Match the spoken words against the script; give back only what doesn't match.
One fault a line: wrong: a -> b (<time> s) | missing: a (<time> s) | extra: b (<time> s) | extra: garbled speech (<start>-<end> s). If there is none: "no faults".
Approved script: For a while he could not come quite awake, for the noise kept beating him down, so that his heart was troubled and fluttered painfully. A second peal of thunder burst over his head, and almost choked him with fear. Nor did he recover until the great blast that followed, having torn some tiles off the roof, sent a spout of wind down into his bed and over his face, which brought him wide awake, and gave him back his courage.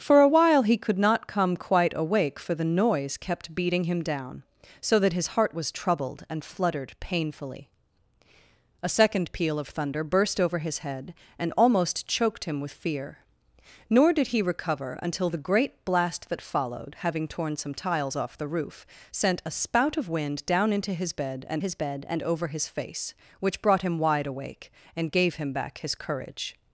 extra: his bed and (21.6 s)